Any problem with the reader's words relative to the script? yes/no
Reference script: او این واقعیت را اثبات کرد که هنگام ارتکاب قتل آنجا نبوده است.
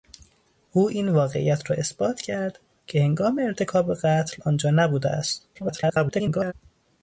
yes